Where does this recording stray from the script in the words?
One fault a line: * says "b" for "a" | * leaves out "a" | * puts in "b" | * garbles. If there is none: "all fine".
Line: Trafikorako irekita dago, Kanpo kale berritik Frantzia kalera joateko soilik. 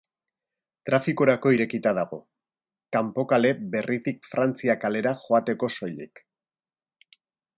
all fine